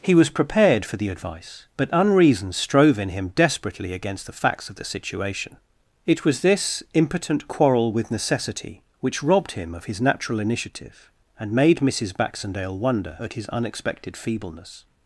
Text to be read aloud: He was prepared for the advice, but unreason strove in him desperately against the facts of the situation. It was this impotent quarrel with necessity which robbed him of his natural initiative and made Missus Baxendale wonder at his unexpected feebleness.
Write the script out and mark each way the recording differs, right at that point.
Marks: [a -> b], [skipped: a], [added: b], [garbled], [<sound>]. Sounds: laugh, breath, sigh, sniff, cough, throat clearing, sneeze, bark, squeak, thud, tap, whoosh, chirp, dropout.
He was prepared for the advice, but unreason strove in him desperately against the facts of the situation. It was this impotent quarrel with necessity which robbed him of his natural initiative and made Missus Baxendale wonder at his unexpected feebleness.